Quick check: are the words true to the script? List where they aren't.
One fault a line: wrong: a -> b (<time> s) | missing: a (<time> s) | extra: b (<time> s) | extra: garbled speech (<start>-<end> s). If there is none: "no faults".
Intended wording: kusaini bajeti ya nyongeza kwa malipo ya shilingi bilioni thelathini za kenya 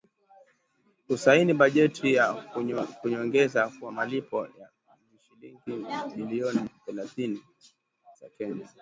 no faults